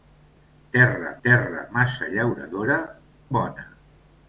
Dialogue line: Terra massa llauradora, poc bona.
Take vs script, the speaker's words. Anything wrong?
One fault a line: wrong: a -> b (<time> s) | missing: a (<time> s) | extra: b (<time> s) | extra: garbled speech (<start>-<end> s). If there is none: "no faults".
extra: terra (1.3 s)
missing: poc (2.8 s)